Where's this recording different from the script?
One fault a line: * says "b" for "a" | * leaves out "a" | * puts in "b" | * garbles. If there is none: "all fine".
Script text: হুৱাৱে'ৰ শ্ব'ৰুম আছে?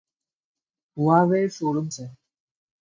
all fine